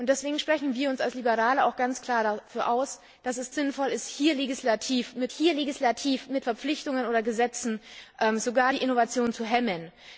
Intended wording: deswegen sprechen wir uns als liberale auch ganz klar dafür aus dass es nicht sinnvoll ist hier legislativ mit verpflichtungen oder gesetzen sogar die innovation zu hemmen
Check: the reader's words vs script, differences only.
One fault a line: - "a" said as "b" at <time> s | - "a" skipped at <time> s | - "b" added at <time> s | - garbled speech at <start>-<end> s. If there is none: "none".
- "nicht" skipped at 3.5 s
- "hier legislativ mit" added at 5.3 s